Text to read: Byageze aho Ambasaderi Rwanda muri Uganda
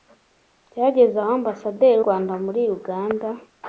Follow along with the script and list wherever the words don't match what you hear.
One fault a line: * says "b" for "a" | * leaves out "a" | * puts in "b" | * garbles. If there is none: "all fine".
all fine